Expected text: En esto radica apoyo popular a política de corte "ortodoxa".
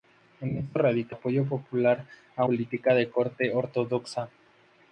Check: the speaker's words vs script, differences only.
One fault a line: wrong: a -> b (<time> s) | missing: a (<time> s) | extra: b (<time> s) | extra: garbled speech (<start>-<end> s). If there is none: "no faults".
no faults